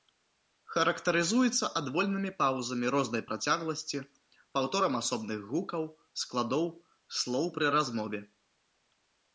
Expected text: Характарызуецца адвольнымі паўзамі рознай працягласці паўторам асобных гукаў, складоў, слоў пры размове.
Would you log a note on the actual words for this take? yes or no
no